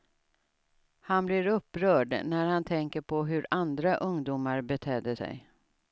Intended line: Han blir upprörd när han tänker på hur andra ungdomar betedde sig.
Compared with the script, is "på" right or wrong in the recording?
right